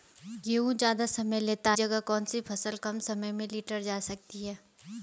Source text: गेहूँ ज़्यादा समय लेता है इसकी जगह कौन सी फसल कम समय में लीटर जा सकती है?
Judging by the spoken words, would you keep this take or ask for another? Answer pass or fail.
fail